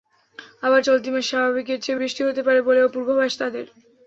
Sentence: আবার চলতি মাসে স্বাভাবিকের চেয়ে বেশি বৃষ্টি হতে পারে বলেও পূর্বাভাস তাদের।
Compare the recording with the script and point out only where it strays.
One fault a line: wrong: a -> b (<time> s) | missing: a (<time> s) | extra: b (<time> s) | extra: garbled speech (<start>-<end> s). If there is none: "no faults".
missing: বেশি (2.0 s)